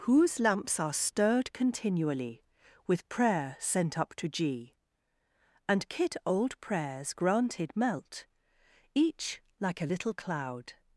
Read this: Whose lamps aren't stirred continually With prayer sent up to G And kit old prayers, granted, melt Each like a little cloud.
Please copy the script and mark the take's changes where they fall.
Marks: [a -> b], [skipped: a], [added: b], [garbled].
Whose lamps [aren't -> are] stirred continually With prayer sent up to G And kit old prayers, granted, melt Each like a little cloud.